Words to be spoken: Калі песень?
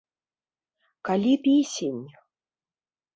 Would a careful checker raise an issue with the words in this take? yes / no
no